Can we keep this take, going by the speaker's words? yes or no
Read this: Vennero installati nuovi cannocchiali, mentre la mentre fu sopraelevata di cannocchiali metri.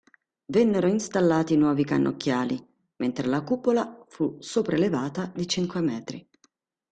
no